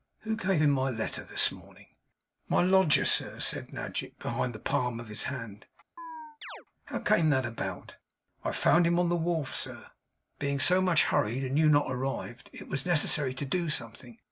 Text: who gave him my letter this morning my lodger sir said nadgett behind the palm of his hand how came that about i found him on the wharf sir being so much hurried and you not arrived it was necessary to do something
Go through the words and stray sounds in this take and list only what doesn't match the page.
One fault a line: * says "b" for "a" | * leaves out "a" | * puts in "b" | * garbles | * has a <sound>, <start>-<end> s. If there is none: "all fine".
* has a chirp, 6.0-6.7 s